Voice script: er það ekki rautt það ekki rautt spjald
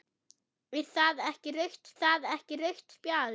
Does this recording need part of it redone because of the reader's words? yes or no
no